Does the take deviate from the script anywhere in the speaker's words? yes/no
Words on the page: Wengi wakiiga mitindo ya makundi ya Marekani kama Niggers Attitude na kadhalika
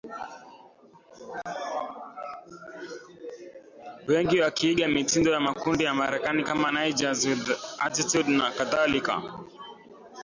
yes